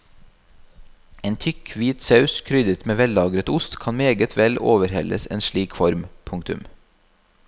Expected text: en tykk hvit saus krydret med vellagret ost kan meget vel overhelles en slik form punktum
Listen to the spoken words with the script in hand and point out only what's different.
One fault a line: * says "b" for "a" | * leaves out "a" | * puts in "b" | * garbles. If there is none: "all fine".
all fine